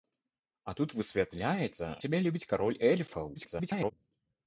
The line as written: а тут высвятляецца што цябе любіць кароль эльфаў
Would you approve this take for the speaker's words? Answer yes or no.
no